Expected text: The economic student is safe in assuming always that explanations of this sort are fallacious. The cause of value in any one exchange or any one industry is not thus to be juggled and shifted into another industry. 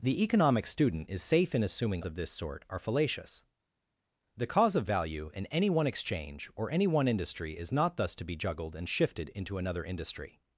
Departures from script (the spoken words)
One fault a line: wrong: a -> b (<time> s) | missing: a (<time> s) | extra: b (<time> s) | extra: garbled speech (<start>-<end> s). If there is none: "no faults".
missing: always that explanations (2.0 s)